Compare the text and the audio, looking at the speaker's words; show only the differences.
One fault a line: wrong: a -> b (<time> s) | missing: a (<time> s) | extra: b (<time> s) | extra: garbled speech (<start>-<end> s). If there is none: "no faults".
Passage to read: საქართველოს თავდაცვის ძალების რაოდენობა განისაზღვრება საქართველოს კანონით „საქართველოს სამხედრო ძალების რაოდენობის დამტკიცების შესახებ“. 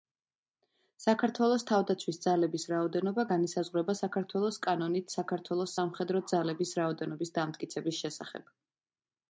no faults